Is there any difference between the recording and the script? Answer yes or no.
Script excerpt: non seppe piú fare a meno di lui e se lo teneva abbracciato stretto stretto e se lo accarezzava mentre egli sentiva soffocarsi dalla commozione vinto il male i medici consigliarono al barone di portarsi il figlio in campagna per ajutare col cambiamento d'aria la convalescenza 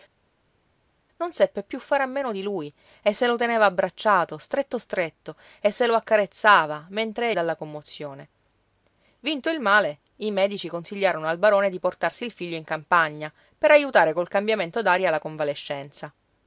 yes